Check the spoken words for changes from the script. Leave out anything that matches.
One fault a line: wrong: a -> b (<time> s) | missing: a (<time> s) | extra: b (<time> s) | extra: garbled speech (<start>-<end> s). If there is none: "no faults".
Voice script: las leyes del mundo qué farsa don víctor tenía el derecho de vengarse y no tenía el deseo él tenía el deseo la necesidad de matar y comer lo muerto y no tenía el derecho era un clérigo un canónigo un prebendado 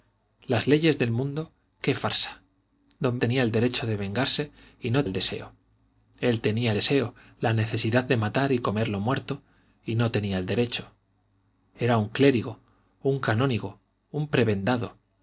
missing: víctor (3.2 s)
missing: tenía (5.0 s)
missing: el (6.7 s)